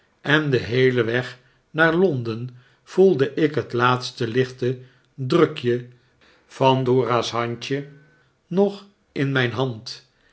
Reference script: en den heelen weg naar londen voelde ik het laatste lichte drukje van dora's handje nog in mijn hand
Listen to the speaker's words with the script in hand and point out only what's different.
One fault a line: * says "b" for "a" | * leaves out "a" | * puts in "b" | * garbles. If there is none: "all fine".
all fine